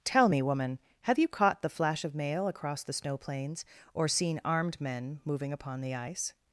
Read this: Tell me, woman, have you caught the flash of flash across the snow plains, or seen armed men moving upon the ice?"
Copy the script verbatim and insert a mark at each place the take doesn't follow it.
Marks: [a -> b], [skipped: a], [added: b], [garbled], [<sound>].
Tell me, woman, have you caught the flash of [flash -> mail] across the snow plains, or seen armed men moving upon the ice?"